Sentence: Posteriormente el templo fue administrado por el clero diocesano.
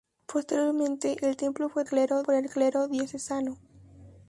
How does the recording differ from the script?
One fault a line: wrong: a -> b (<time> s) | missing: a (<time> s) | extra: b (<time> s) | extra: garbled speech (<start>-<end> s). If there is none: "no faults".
wrong: administrado -> clero (1.9 s)